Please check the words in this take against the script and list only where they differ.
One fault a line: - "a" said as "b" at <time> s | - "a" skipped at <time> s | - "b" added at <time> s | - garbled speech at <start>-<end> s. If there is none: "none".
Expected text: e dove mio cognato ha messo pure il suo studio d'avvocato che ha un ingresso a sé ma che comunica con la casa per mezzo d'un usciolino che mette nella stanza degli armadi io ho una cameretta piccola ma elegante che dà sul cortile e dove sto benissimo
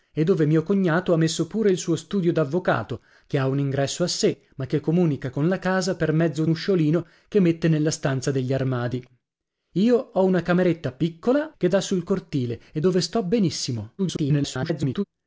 - "d'un" skipped at 6.5 s
- "ma elegante" skipped at 11.5 s
- garbled speech at 14.0-15.0 s